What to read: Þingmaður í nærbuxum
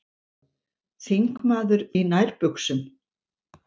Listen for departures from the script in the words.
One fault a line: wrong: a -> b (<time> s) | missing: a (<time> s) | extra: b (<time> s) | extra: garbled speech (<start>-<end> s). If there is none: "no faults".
no faults